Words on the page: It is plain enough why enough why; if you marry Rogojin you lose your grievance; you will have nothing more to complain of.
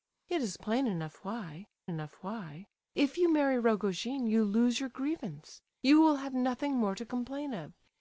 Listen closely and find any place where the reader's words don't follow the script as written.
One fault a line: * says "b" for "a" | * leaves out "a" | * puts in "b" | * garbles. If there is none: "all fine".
all fine